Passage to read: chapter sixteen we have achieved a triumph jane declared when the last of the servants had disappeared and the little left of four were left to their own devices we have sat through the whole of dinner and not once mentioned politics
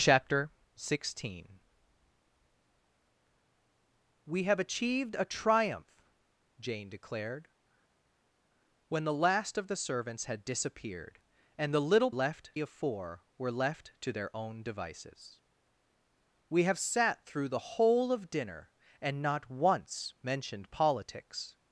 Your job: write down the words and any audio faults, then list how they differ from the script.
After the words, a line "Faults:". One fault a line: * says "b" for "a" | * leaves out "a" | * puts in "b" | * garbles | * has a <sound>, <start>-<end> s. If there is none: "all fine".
chapter sixteen we have achieved a triumph jane declared when the last of the servants had disappeared and the little left of four were left to their own devices we have sat through the whole of dinner and not once mentioned politics
Faults:
all fine